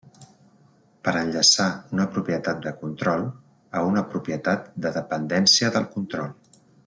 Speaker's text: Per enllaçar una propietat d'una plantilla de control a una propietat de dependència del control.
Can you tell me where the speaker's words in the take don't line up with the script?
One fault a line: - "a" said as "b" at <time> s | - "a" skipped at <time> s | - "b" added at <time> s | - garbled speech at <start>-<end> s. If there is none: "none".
- "d'una plantilla" skipped at 2.6 s